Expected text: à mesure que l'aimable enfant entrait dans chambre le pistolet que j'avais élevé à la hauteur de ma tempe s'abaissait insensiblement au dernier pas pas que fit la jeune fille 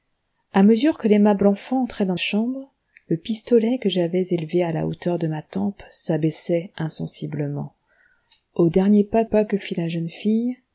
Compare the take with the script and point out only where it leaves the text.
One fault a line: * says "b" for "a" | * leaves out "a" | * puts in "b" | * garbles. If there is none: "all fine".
all fine